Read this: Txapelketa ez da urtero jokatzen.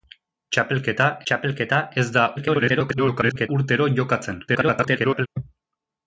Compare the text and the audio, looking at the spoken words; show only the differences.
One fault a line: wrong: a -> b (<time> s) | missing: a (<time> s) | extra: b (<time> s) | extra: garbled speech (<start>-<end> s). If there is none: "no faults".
extra: txapelketa (1.3 s)
extra: garbled speech (2.4-3.5 s)
extra: garbled speech (4.5-5.3 s)